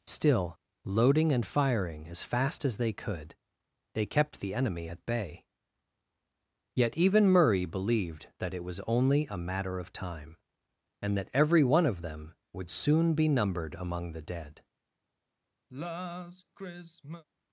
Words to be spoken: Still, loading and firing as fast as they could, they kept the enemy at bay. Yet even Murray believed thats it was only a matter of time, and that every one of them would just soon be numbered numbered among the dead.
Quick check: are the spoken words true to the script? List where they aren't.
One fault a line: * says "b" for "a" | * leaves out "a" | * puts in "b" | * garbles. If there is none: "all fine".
* says "that" for "thats"
* leaves out "just"
* leaves out "numbered"